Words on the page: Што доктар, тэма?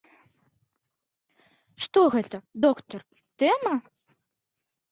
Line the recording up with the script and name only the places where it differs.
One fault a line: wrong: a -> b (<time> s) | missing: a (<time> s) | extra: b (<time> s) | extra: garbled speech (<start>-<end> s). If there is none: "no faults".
extra: гэта (2.2 s)